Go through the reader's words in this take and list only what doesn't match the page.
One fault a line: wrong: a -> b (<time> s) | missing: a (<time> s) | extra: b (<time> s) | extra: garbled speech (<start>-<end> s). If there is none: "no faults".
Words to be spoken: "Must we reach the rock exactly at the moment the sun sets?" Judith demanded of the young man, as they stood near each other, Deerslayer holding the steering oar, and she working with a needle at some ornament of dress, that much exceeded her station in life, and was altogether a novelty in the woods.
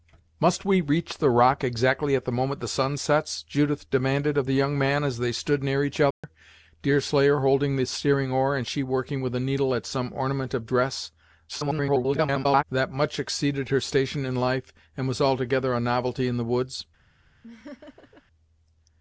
extra: garbled speech (11.5-12.6 s)